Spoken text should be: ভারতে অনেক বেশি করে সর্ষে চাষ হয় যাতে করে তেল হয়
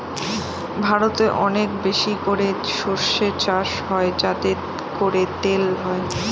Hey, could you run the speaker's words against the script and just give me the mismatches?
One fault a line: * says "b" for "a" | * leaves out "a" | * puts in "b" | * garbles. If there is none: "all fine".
all fine